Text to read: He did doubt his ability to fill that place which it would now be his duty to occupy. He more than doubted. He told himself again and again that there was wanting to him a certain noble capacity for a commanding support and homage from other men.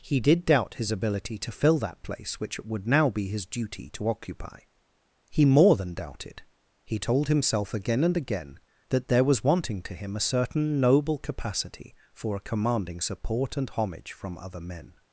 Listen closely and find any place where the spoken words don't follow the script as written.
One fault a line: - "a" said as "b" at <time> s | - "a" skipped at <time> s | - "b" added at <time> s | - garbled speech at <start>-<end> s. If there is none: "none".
none